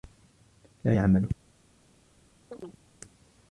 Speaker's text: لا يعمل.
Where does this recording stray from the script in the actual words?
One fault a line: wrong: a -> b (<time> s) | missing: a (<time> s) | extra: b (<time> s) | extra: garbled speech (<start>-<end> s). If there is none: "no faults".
no faults